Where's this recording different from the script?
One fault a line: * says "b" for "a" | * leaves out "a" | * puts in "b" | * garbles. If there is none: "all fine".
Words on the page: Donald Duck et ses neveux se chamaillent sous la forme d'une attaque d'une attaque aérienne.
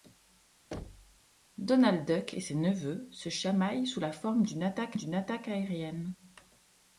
all fine